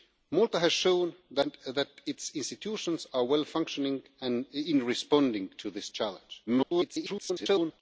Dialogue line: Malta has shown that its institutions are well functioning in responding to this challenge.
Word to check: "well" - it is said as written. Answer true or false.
true